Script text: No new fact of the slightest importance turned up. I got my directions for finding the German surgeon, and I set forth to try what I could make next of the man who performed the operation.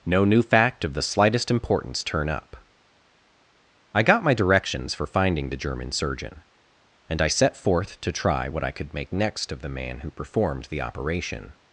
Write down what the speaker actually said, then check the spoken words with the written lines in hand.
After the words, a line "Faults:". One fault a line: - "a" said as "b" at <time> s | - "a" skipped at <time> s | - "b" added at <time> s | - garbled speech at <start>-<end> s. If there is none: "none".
No new fact of the slightest importance turn up. I got my directions for finding the German surgeon, and I set forth to try what I could make next of the man who performed the operation.
Faults:
- "turned" said as "turn" at 2.0 s